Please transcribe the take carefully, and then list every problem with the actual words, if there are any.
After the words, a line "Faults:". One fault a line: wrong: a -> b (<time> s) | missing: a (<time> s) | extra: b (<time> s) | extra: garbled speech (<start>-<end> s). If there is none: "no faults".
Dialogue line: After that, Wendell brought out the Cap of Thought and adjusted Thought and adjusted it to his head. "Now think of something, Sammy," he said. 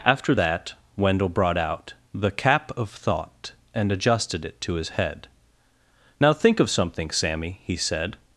After that, Wendell brought out the Cap of Thought and adjusted it to his head. "Now think of something, Sammy," he said.
Faults:
missing: Thought and adjusted (4.5 s)